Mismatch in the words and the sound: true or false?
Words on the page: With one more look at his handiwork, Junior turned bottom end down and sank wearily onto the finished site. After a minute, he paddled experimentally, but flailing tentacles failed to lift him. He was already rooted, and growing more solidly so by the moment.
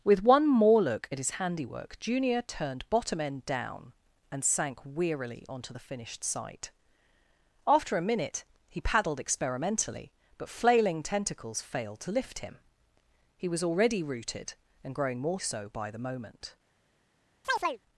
true